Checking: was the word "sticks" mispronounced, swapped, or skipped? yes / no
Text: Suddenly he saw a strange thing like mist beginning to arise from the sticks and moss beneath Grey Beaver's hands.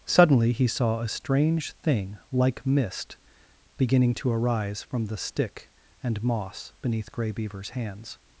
yes